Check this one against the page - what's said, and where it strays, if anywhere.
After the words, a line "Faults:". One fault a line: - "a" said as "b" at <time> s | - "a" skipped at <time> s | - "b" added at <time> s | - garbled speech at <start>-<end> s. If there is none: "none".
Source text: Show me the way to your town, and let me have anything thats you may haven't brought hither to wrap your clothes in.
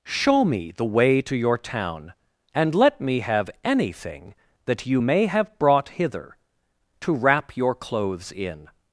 Show me the way to your town, and let me have anything that you may have brought hither to wrap your clothes in.
Faults:
- "thats" said as "that" at 4.7 s
- "haven't" said as "have" at 5.2 s